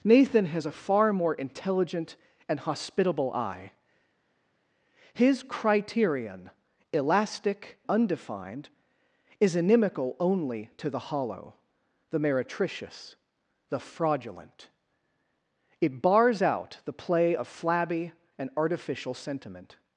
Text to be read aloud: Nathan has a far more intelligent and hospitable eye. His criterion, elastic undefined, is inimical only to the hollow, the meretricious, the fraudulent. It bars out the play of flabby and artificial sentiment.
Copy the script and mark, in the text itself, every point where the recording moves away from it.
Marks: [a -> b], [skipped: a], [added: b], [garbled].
Nathan has a far more intelligent and hospitable eye. His criterion, elastic undefined, is inimical only to the hollow, the meretricious, the fraudulent. It bars out the play of flabby and artificial sentiment.